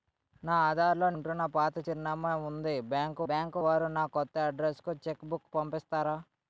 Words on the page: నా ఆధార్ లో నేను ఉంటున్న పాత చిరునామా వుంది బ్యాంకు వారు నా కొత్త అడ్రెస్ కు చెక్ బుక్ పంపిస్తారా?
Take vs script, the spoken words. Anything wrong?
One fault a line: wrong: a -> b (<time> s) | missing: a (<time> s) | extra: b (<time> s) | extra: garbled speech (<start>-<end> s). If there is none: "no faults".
missing: నేను (1.1 s)
extra: బ్యాంకు (3.3 s)